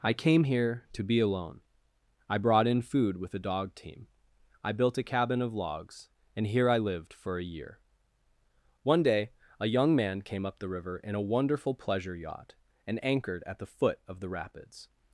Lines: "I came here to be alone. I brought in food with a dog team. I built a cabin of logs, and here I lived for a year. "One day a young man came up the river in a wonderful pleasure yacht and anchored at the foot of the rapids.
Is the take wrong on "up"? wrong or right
right